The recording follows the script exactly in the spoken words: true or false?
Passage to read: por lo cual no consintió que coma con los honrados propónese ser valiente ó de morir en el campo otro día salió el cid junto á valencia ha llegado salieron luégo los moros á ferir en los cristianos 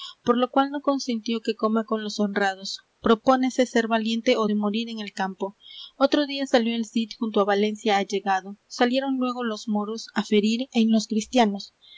true